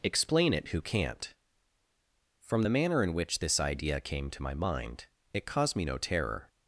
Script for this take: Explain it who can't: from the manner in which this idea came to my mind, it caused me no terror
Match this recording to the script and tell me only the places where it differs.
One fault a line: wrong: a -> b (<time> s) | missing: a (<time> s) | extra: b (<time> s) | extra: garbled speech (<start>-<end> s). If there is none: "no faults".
no faults